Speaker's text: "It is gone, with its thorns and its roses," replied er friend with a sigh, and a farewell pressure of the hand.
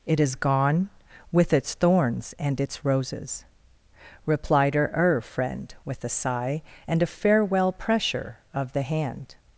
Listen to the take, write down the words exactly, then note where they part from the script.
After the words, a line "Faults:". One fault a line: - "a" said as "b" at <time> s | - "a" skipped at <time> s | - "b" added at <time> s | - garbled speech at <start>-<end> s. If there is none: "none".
"It is gone, with its thorns and its roses," replied her er friend with a sigh, and a farewell pressure of the hand.
Faults:
- "her" added at 4.8 s